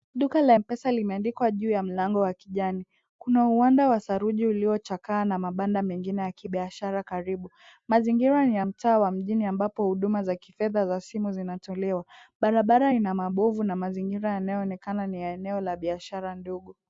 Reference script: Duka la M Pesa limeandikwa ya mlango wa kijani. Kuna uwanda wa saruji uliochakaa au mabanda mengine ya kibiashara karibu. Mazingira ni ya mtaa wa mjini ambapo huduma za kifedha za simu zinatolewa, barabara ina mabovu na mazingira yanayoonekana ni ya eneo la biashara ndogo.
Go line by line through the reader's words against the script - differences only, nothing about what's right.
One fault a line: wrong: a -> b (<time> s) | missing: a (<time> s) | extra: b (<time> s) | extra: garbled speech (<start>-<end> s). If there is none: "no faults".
extra: juu (1.5 s)
wrong: au -> na (5.2 s)